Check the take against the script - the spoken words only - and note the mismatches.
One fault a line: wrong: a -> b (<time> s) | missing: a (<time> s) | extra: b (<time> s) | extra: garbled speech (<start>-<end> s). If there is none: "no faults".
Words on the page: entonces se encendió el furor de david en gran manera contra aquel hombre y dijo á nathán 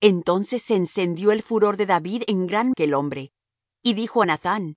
missing: manera contra (2.7 s)